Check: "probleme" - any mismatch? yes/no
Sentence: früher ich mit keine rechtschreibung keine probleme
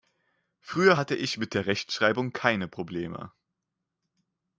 no